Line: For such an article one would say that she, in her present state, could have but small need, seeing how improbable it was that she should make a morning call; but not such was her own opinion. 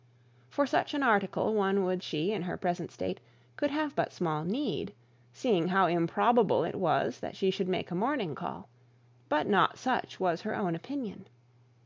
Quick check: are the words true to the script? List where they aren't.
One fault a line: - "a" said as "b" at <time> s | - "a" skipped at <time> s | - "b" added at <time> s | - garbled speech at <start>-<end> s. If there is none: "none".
- "say that" skipped at 2.0 s